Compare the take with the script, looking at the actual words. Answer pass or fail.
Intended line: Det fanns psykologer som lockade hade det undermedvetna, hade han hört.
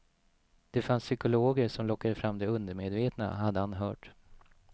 fail